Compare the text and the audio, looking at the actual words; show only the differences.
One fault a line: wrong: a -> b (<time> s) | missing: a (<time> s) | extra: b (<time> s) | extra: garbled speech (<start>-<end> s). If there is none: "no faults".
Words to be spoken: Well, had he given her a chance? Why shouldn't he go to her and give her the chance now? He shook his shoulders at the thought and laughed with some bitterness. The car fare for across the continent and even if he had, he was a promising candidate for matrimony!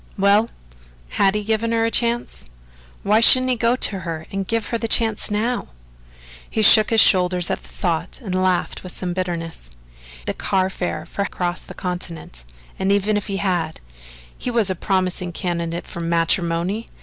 no faults